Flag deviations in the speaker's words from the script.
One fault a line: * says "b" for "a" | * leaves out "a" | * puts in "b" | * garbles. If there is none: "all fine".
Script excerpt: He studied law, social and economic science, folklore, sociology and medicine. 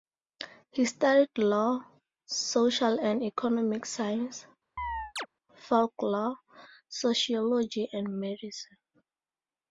all fine